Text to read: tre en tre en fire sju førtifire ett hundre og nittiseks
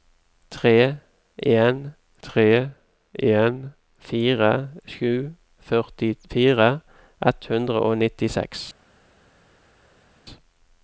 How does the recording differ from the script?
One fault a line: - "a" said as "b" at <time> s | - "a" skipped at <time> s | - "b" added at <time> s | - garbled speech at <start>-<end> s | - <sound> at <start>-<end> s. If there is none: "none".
none